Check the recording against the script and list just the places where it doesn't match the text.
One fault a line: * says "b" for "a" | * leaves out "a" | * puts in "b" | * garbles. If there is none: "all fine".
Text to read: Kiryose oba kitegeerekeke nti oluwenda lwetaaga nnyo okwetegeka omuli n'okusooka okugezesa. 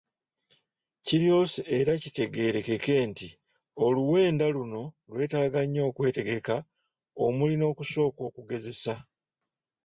* says "era" for "oba"
* puts in "luno"